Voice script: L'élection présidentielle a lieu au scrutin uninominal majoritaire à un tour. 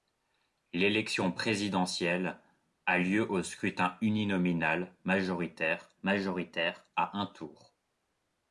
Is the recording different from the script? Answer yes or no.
yes